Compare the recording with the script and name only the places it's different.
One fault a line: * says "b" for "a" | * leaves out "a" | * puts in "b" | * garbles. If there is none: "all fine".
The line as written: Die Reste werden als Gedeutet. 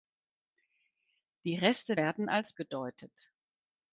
all fine